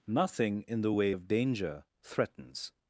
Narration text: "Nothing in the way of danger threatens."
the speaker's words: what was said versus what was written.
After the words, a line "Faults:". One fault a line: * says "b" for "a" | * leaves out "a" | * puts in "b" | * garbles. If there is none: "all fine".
"Nothing in the way of danger threatens."
Faults:
all fine